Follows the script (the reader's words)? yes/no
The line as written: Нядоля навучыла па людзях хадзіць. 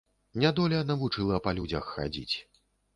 yes